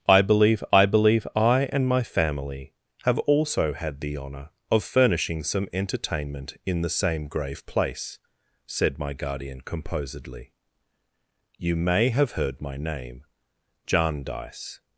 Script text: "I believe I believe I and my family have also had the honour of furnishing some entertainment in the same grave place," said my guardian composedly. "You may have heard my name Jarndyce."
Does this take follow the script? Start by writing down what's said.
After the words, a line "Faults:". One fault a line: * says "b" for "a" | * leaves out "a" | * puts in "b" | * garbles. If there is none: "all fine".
"I believe I believe I and my family have also had the honour of furnishing some entertainment in the same grave place," said my guardian composedly. "You may have heard my name Jarndyce."
Faults:
all fine